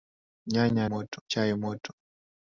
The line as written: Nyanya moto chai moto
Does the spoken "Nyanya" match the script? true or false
true